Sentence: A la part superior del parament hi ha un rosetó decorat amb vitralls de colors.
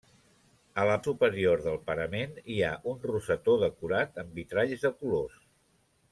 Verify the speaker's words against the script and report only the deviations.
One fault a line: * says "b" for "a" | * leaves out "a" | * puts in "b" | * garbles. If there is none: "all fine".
* leaves out "part"